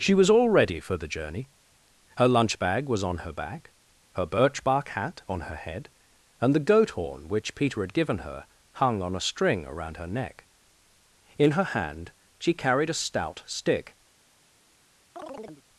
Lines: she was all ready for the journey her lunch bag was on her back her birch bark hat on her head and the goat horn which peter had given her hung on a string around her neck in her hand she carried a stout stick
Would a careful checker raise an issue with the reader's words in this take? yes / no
no